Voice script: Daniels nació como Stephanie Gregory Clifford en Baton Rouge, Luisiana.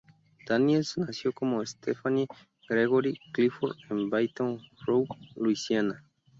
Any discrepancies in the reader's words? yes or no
no